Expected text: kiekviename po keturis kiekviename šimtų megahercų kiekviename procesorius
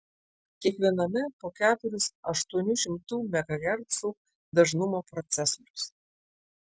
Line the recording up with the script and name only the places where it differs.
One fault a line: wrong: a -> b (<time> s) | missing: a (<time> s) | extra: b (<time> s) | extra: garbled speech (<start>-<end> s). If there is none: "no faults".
wrong: kiekviename -> aštuonių (2.3 s)
wrong: kiekviename -> dažnumo (4.6 s)